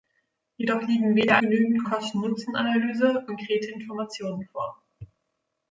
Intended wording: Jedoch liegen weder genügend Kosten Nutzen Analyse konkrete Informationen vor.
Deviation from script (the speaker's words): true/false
false